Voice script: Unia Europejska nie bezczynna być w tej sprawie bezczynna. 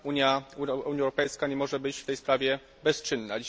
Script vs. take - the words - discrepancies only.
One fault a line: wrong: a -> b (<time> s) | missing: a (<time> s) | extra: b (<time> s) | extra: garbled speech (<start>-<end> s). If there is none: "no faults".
wrong: bezczynna -> może (1.6 s)